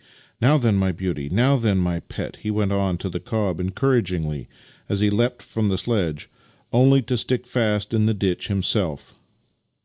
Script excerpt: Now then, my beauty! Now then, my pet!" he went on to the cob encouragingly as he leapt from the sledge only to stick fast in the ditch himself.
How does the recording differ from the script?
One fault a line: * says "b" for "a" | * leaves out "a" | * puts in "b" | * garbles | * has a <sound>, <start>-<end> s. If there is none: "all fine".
all fine